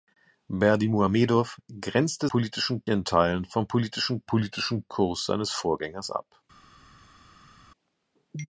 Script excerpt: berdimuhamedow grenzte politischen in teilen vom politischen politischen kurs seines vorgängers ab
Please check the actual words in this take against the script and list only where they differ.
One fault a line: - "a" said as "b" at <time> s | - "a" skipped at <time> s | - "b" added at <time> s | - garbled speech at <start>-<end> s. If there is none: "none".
none